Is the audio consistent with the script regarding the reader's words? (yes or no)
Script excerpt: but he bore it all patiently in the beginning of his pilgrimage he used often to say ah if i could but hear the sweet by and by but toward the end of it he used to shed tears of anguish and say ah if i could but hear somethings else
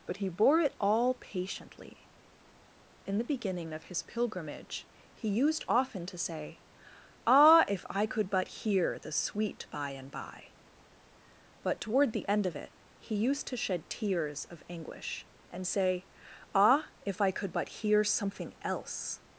no